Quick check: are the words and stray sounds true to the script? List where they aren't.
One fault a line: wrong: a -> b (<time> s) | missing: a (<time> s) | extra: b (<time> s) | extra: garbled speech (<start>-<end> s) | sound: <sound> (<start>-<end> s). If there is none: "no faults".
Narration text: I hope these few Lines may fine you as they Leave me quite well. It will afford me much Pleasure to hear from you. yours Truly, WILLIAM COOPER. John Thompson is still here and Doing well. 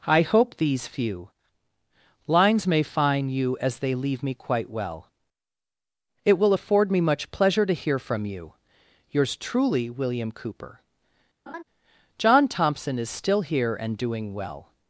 wrong: fine -> find (2.8 s)
sound: laugh (11.5-11.6 s)